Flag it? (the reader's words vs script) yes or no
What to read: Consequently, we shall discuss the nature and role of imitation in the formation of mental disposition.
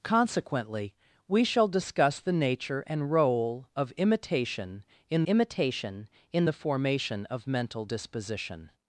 yes